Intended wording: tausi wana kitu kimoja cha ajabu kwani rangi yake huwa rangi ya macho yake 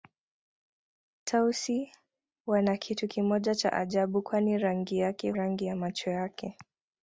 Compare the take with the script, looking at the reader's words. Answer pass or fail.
fail